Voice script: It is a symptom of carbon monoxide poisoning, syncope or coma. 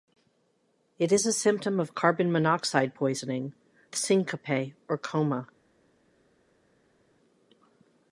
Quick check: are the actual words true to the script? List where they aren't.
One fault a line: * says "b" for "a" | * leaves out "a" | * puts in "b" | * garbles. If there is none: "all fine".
all fine